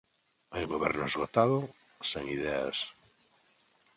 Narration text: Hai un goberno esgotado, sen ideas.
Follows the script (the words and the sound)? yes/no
yes